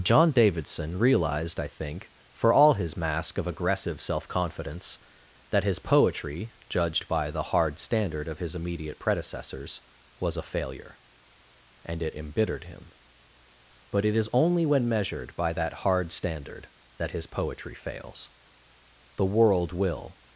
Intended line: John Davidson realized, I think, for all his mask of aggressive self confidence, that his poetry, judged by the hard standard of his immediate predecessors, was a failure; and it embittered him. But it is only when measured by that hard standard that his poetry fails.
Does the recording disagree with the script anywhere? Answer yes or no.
yes